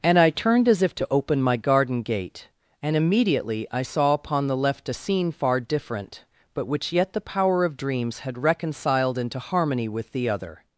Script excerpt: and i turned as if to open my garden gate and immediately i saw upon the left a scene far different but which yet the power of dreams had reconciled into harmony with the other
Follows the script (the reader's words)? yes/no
yes